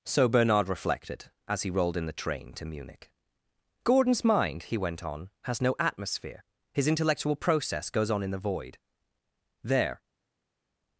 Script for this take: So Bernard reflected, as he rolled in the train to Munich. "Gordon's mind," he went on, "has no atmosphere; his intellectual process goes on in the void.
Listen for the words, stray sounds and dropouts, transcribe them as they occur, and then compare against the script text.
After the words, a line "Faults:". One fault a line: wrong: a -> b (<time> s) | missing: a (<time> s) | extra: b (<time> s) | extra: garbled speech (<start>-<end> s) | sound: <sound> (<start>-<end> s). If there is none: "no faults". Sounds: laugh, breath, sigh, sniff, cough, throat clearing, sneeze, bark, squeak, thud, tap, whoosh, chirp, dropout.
So Bernard reflected, as he rolled in the train to Munich. "Gordon's mind," he went on, "has no atmosphere; his intellectual process goes on in the void. There
Faults:
extra: There (9.6 s)